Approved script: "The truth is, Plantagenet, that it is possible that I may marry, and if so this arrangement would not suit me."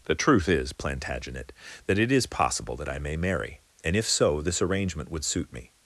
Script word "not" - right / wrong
wrong